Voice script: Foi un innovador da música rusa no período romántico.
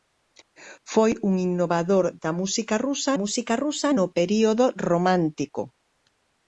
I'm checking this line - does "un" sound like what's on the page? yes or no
yes